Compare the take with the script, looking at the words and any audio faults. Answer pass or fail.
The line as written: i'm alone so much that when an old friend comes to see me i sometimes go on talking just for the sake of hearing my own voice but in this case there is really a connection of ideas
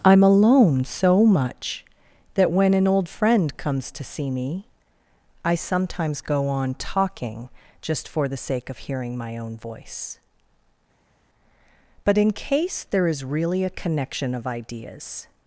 fail